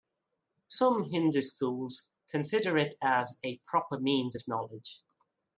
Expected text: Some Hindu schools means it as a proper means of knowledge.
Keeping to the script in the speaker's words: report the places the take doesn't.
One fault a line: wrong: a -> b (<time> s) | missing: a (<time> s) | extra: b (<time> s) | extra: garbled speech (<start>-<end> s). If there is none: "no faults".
wrong: means -> consider (2.3 s)